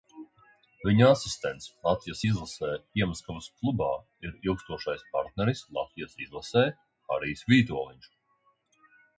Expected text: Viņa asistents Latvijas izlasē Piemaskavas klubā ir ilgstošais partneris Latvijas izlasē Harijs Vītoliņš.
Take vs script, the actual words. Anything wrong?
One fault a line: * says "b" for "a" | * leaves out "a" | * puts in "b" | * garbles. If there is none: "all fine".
all fine